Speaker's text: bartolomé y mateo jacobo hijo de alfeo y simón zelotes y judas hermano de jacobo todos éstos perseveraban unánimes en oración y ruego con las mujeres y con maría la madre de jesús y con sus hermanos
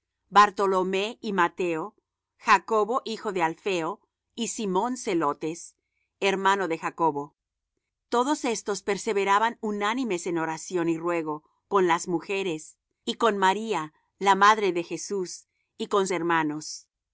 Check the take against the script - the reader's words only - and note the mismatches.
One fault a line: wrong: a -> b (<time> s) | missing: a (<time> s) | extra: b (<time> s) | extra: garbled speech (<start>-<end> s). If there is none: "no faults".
missing: y judas (5.8 s)
missing: sus (16.1 s)